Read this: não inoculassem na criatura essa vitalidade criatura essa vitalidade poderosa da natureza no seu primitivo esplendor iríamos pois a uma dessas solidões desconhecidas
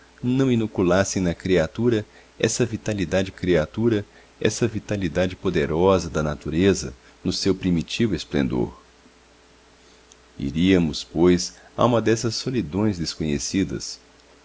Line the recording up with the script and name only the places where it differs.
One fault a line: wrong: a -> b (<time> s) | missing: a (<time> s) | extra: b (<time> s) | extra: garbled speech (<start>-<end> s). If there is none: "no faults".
no faults